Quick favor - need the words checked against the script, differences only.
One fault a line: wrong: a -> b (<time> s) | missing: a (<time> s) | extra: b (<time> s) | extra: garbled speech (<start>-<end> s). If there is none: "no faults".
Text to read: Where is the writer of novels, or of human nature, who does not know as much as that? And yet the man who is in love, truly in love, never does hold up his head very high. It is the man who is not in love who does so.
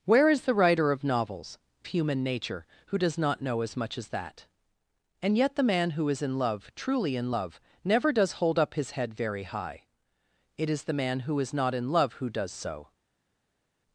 missing: or of (1.6 s)